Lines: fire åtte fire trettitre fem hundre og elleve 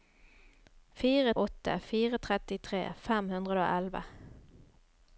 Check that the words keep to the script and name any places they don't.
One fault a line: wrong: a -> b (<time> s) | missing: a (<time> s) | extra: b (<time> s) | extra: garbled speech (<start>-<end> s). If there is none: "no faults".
no faults